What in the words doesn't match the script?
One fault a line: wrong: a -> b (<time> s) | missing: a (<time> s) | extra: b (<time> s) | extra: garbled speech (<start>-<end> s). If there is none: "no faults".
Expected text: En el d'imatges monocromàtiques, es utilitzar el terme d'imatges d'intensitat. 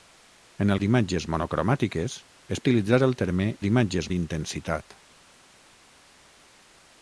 no faults